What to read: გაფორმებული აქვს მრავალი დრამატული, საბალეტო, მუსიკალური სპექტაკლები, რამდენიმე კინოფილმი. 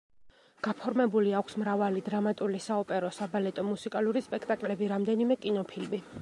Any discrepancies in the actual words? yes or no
yes